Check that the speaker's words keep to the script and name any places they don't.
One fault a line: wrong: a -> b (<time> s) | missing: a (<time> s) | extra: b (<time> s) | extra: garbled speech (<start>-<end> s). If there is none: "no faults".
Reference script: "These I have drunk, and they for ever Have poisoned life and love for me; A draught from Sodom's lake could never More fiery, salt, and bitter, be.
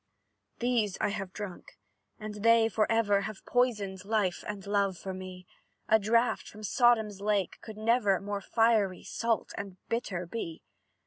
no faults